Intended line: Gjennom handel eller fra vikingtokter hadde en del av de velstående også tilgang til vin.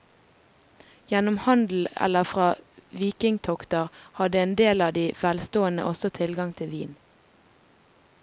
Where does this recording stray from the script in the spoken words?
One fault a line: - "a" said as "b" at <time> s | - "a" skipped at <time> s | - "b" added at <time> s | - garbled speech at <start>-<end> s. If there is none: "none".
none